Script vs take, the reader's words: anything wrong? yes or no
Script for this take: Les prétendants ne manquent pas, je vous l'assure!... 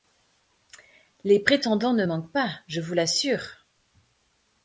no